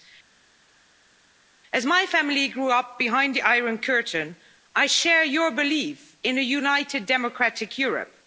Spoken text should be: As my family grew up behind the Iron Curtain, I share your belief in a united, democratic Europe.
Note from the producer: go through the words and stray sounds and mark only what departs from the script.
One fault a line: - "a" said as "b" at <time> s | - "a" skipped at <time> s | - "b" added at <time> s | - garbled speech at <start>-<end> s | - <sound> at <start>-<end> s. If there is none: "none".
none